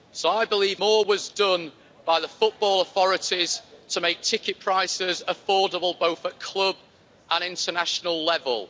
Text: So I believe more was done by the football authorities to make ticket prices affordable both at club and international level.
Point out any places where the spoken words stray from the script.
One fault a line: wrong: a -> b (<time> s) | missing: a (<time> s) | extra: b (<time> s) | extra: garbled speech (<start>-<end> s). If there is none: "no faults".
no faults